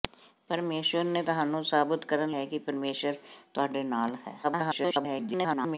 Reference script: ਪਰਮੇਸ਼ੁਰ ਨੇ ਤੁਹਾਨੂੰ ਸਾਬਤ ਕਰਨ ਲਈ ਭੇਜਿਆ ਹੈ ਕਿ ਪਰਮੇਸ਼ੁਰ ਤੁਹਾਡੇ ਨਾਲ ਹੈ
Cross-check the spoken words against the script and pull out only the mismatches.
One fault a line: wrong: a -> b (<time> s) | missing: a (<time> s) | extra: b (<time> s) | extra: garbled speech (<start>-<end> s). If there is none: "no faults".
missing: ਲਈ ਭੇਜਿਆ (2.3 s)
extra: garbled speech (4.4-5.8 s)